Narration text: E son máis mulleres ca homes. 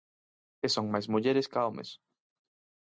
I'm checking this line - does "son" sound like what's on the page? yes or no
yes